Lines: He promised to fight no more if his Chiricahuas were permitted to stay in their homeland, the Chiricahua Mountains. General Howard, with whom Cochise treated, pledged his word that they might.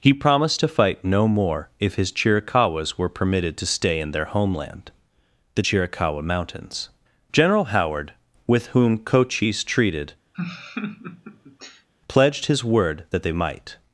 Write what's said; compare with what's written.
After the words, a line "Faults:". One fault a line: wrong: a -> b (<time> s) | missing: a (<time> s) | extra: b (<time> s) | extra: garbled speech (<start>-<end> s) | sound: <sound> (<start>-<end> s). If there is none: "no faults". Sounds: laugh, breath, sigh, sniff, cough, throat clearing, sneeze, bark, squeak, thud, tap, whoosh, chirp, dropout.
He promised to fight no more if his Chiricahuas were permitted to stay in their homeland, the Chiricahua Mountains. General Howard, with whom Cochise treated, pledged his word that they might.
Faults:
sound: laugh (10.3-11.9 s)